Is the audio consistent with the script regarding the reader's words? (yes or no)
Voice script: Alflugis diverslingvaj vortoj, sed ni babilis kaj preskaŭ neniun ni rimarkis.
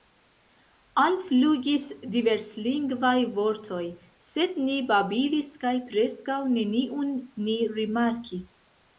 yes